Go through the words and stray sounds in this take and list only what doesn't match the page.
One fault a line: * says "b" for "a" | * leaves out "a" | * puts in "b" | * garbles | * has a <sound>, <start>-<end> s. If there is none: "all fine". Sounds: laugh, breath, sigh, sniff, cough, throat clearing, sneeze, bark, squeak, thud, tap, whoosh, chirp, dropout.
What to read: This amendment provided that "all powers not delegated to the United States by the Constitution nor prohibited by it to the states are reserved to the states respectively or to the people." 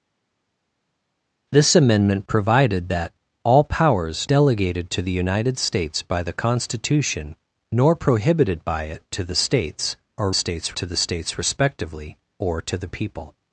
* leaves out "not"
* says "states" for "reserved"